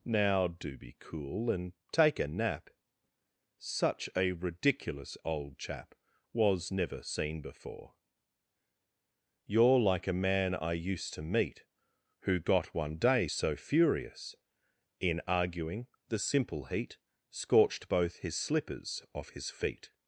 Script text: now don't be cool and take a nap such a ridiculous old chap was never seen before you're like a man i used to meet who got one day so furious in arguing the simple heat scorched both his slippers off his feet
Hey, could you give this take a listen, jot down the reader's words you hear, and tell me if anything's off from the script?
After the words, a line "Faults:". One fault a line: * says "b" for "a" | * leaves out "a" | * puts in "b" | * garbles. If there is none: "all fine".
now do be cool and take a nap such a ridiculous old chap was never seen before you're like a man i used to meet who got one day so furious in arguing the simple heat scorched both his slippers off his feet
Faults:
* says "do" for "don't"